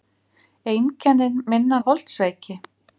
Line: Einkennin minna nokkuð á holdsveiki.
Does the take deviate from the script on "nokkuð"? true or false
true